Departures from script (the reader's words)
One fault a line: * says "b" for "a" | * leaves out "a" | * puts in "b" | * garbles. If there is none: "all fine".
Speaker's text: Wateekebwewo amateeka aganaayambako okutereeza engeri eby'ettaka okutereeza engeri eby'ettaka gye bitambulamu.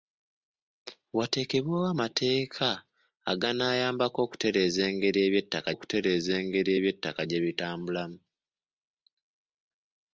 all fine